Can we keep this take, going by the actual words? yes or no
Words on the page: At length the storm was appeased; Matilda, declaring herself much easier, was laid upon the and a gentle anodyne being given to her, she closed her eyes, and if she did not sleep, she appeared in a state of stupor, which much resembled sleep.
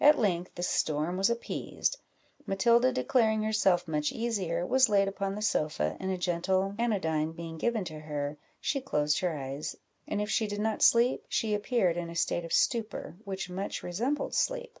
no